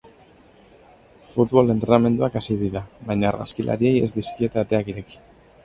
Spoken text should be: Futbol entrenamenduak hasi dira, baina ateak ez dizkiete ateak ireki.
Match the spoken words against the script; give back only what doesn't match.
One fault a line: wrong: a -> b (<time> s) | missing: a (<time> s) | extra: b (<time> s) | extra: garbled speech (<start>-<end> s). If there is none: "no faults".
wrong: ateak -> argazkilariei (3.3 s)